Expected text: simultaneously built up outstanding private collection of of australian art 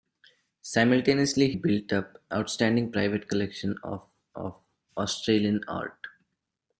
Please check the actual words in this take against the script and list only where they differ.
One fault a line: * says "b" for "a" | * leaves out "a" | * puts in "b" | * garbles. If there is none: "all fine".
all fine